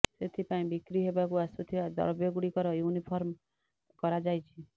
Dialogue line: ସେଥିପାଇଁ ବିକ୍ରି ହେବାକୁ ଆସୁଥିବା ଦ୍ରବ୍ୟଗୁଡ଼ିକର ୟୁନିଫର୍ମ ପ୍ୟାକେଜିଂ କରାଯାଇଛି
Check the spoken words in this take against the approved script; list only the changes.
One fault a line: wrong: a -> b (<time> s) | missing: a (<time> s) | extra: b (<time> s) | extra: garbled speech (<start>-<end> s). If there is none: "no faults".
missing: ପ୍ୟାକେଜିଂ (3.4 s)